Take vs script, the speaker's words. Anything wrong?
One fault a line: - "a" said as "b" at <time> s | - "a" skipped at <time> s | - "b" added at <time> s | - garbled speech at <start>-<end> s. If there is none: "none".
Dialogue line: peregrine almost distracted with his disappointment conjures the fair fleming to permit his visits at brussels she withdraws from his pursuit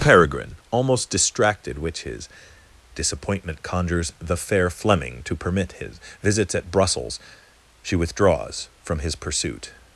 - "with" said as "which" at 1.8 s